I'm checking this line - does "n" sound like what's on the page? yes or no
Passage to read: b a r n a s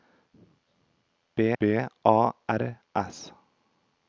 no